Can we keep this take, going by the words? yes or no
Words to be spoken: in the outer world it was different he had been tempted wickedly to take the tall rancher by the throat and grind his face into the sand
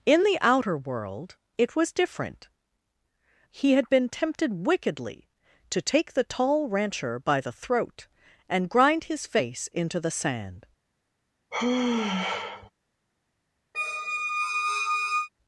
yes